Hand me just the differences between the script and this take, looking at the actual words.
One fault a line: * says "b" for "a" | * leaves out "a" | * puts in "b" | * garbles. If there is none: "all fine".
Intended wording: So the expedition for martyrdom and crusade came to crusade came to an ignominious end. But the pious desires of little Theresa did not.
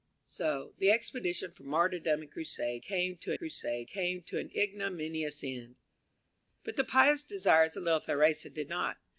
all fine